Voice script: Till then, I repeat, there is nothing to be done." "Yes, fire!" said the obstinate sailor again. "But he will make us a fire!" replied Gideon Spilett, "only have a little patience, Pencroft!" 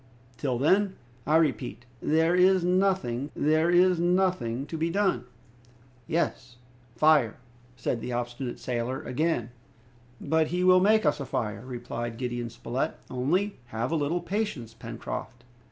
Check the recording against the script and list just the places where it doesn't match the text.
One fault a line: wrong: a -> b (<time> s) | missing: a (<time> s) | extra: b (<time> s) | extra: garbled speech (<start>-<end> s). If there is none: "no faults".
extra: there is nothing (3.3 s)